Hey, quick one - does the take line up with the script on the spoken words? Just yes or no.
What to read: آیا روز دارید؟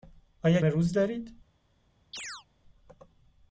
yes